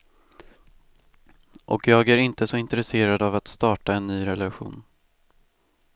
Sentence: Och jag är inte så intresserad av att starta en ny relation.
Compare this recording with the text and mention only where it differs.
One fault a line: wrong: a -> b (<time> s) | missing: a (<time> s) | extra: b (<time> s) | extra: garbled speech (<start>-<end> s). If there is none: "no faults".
no faults